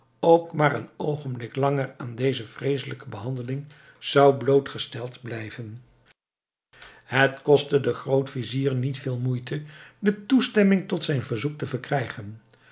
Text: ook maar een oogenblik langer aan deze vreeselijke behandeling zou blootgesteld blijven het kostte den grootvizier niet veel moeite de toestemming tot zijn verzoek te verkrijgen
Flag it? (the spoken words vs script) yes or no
no